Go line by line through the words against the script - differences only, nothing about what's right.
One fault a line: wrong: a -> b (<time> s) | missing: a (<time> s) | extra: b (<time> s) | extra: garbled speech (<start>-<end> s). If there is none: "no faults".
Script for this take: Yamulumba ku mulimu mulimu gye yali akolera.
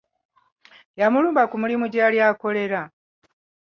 missing: mulimu (1.9 s)